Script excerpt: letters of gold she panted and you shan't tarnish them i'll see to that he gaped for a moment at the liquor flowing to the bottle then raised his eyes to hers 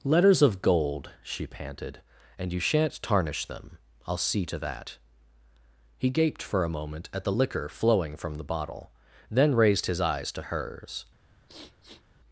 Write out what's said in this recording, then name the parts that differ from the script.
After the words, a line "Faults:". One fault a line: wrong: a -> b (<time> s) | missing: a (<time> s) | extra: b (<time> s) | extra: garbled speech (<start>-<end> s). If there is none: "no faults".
letters of gold she panted and you shan't tarnish them i'll see to that he gaped for a moment at the liquor flowing from the bottle then raised his eyes to hers
Faults:
wrong: to -> from (8.1 s)